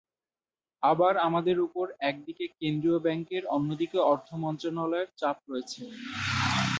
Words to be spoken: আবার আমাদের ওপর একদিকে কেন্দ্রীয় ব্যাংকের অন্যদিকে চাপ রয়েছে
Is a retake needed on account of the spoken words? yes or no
yes